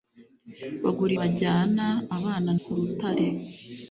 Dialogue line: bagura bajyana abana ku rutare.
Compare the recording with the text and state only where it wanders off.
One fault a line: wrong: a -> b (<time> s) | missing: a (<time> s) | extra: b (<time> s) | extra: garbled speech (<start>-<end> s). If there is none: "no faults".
no faults